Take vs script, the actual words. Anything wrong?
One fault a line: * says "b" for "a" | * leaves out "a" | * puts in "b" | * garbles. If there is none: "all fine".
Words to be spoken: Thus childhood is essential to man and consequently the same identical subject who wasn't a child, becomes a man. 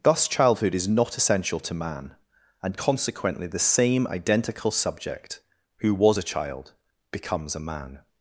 * puts in "not"
* says "was" for "wasn't"